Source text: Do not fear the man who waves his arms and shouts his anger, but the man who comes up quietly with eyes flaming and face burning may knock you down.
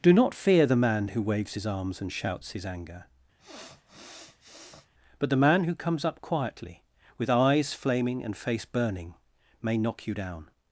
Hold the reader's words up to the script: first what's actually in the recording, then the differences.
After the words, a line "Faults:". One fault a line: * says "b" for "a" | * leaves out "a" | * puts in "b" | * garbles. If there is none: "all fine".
Do not fear the man who waves his arms and shouts his anger, but the man who comes up quietly with eyes flaming and face burning may knock you down.
Faults:
all fine